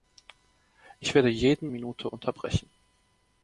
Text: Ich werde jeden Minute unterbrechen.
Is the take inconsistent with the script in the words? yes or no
no